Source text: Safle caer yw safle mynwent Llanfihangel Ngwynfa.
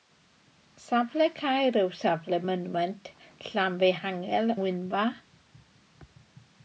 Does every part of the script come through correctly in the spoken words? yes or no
yes